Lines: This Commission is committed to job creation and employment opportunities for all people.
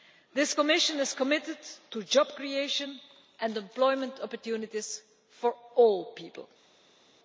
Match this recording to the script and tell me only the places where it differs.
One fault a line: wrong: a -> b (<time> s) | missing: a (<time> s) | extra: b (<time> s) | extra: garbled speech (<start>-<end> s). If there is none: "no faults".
no faults